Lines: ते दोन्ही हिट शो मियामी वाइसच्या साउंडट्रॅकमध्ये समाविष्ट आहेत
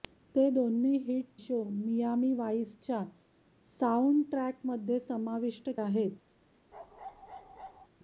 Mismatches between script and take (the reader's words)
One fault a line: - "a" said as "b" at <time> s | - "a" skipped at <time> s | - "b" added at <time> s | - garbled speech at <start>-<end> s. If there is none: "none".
none